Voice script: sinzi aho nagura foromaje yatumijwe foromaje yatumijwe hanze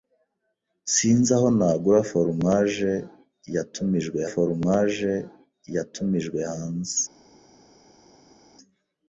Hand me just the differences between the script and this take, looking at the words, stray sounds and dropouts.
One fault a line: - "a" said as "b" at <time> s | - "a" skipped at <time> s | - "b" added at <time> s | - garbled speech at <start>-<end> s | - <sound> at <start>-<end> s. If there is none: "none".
none